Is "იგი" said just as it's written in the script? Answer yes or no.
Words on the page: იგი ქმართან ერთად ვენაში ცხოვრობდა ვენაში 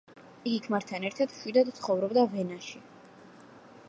yes